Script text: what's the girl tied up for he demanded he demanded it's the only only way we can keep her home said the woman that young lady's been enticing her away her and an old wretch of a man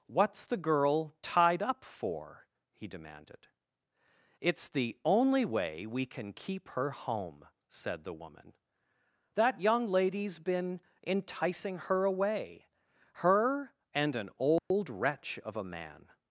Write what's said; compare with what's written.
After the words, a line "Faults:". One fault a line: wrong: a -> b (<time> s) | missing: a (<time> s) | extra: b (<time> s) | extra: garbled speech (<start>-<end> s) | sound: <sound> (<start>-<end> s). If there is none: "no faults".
what's the girl tied up for he demanded it's the only way we can keep her home said the woman that young lady's been enticing her away her and an old wretch of a man
Faults:
missing: he demanded (3.5 s)
missing: only (5.4 s)
sound: dropout (14.6-14.7 s)